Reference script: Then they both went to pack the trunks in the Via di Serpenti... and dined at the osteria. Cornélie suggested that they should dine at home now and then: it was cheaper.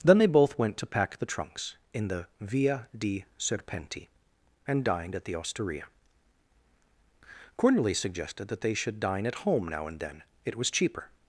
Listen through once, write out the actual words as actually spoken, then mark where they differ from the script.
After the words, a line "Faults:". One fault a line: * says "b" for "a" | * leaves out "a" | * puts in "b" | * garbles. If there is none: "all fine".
Then they both went to pack the trunks in the Via di Serpenti... and dined at the osteria. Cornélie suggested that they should dine at home now and then: it was cheaper.
Faults:
all fine